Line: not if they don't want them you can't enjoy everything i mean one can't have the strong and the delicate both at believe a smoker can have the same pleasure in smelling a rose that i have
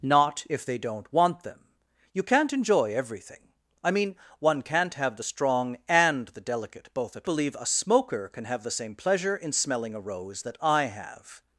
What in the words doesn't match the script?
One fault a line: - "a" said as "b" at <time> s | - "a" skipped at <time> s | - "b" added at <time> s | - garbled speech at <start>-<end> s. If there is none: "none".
none